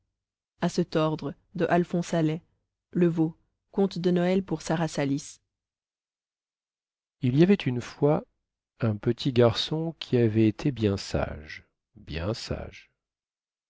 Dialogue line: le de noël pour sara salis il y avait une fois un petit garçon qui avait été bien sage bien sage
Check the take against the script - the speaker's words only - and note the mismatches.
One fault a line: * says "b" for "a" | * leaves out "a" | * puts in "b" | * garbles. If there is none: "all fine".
* puts in "veau conte"